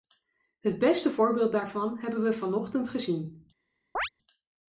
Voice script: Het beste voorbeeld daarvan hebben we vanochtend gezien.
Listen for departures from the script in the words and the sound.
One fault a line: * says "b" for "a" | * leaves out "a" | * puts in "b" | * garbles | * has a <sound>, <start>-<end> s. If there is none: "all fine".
* has a chirp, 4.0-4.1 s